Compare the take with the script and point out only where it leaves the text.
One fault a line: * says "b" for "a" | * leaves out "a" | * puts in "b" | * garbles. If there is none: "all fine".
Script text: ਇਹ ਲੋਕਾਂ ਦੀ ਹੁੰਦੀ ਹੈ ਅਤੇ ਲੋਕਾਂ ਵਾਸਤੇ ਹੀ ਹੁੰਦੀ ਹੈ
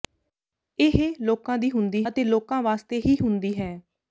* leaves out "ਹੈ"